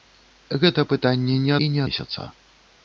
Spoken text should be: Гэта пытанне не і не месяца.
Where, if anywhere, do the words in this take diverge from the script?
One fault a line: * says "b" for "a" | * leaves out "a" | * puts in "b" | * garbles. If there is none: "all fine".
all fine